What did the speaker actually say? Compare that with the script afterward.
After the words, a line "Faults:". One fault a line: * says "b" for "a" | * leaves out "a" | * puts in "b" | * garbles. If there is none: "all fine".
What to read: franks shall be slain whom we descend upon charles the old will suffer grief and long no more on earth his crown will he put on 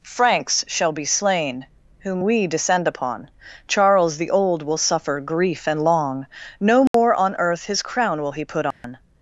franks shall be slain whom we descend upon charles the old will suffer grief and long no more on earth his crown will he put on
Faults:
all fine